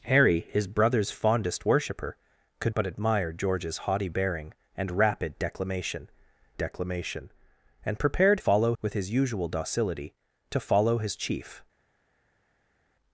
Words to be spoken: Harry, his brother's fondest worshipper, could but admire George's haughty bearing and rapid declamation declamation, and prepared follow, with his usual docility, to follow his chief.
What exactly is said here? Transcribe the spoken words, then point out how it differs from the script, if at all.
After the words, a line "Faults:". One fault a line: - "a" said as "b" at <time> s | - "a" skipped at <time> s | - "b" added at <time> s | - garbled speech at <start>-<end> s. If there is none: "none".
Harry, his brother's fondest worshipper, could but admire George's haughty bearing and rapid declamation declamation, and prepared follow, with his usual docility, to follow his chief.
Faults:
none